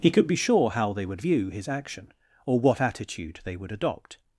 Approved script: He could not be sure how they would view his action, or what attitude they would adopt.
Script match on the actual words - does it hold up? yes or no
no